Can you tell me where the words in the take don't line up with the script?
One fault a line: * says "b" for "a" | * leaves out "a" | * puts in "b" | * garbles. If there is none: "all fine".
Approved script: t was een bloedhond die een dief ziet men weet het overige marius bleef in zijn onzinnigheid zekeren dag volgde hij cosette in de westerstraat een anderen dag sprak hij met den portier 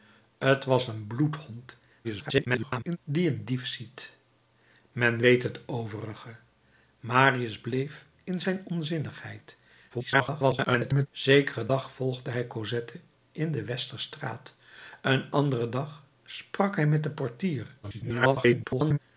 * garbles
* garbles
* garbles